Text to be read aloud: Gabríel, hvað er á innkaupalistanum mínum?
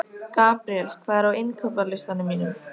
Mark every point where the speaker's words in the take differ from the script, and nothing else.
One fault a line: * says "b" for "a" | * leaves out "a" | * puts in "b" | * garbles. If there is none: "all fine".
all fine